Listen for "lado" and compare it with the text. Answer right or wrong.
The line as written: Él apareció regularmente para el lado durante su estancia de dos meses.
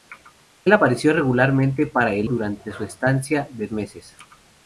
wrong